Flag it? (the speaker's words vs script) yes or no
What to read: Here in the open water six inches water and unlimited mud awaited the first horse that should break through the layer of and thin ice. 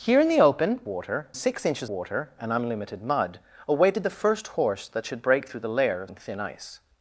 no